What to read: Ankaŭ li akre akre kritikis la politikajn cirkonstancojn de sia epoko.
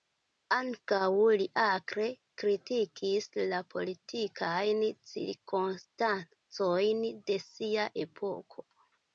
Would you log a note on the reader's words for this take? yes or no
yes